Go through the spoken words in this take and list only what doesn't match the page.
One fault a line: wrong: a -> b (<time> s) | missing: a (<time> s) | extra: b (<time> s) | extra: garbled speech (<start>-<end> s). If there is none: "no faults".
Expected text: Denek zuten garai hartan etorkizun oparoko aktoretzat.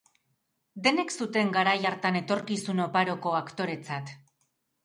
no faults